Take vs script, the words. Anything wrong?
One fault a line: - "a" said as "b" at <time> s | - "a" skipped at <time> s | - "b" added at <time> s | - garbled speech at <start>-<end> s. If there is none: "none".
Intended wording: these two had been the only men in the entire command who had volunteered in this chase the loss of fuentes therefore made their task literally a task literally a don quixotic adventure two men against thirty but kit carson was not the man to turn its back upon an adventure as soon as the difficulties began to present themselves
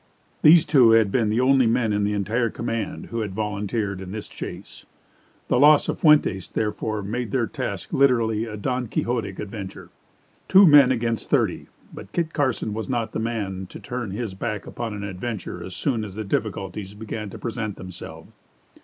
- "task literally a" skipped at 8.6 s
- "its" said as "his" at 14.1 s